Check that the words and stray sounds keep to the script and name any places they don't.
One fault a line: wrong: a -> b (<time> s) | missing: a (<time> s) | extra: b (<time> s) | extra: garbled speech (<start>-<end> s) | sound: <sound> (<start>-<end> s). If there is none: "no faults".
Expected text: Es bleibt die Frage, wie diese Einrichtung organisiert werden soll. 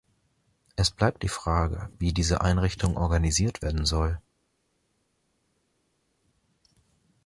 no faults